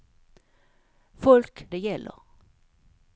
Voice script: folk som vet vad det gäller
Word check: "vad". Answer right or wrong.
wrong